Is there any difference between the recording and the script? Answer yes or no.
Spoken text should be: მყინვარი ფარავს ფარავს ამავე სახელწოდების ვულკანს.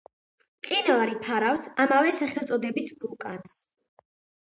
yes